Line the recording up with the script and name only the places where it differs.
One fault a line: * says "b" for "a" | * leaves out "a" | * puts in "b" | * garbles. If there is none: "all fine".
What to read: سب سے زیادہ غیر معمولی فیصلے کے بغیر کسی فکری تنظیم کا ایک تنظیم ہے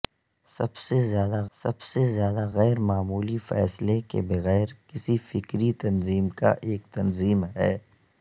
* puts in "سب سے زیادہ"